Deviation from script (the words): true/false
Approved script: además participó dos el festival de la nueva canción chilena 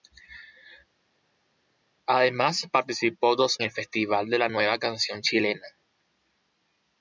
false